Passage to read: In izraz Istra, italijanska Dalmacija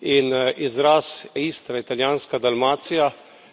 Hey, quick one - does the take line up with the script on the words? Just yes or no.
yes